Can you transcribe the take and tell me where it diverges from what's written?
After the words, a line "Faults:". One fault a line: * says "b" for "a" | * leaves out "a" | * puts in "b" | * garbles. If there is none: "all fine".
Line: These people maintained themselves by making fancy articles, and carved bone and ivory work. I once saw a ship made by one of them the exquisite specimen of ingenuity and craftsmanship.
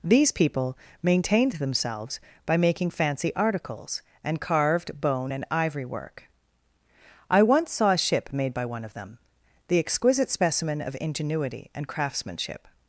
These people maintained themselves by making fancy articles, and carved bone and ivory work. I once saw a ship made by one of them the exquisite specimen of ingenuity and craftsmanship.
Faults:
all fine